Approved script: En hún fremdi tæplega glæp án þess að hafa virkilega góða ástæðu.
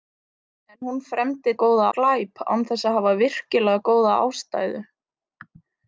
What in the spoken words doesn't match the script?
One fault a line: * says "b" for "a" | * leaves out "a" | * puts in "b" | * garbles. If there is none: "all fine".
* says "góða" for "tæplega"